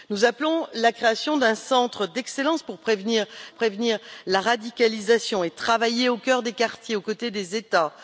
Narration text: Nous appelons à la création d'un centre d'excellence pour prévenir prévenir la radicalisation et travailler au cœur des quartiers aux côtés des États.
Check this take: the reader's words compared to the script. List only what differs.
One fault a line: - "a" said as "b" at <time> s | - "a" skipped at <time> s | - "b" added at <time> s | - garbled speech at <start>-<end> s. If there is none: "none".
none